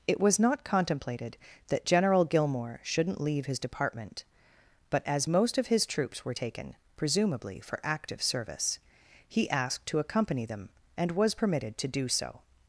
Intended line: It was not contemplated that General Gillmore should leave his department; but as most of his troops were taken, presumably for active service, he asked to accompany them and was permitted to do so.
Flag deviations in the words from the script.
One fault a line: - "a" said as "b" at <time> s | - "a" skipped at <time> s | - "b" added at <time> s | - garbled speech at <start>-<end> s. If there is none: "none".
- "should" said as "shouldn't" at 2.8 s